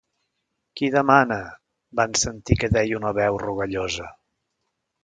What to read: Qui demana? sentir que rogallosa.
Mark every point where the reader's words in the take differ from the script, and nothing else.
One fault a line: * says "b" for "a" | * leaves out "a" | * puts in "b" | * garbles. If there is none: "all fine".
* puts in "van"
* puts in "deia una veu"